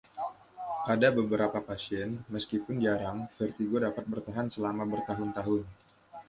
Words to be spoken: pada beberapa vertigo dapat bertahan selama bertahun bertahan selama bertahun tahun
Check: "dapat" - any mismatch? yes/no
yes